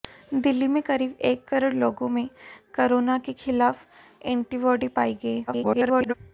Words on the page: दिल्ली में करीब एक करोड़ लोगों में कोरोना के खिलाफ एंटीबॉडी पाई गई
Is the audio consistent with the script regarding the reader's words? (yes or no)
no